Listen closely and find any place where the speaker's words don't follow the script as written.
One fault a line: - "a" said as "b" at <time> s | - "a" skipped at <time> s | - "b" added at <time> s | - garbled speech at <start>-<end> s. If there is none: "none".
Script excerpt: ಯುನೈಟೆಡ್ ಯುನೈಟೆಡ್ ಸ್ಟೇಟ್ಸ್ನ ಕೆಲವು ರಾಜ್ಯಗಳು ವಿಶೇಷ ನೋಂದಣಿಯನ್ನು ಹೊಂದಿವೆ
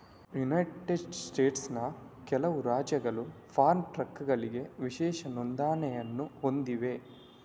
- "ಯುನೈಟೆಡ್" skipped at 0.9 s
- "ಫಾರ್ಮ್ ಟ್ರಕ್ಗಳಿಗೆ" added at 3.5 s